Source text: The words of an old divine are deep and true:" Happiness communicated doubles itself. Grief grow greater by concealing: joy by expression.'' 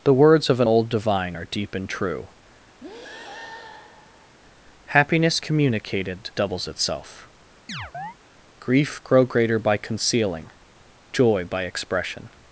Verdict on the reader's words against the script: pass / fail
pass